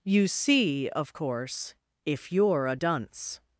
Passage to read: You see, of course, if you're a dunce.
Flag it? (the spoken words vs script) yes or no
no